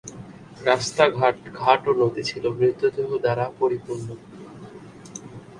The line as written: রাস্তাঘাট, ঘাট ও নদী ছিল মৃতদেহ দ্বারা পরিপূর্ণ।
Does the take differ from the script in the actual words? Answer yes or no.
no